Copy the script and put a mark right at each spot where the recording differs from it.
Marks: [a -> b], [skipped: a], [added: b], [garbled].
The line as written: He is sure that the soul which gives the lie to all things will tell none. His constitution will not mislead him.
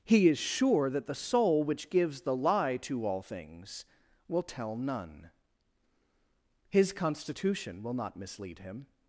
He is sure that the soul which gives the lie to all things will tell none. His constitution will not mislead him.